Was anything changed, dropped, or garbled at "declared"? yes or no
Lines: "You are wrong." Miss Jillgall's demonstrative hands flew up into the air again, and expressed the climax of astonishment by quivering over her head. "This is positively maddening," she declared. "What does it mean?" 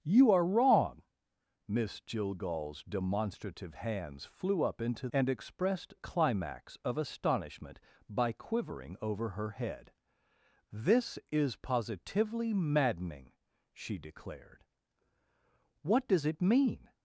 no